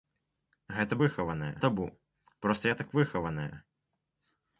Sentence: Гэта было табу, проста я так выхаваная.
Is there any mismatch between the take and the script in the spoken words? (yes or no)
yes